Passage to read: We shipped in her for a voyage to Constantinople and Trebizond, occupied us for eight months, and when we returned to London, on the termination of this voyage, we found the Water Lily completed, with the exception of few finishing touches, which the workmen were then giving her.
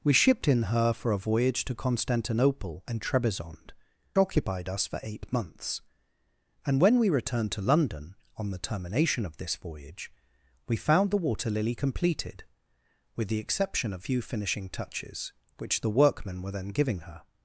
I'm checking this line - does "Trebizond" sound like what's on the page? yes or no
yes